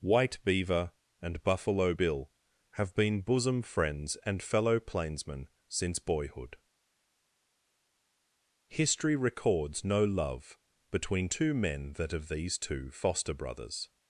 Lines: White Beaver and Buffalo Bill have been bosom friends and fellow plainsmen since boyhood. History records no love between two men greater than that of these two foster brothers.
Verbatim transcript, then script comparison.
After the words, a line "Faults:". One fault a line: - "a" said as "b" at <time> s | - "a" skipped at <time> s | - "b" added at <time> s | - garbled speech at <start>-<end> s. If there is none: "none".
White Beaver and Buffalo Bill have been bosom friends and fellow plainsmen since boyhood. History records no love between two men that of these two foster brothers.
Faults:
- "greater than" skipped at 11.9 s